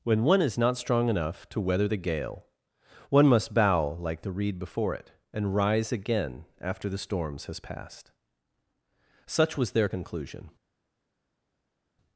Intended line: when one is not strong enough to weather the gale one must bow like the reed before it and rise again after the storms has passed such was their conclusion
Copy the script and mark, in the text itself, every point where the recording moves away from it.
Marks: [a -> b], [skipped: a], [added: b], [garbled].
when one is not strong enough to weather the gale one must bow like the reed before it and rise again after the storms has passed such was their conclusion